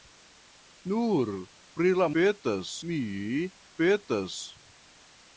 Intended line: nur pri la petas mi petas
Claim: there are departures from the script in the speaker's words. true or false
false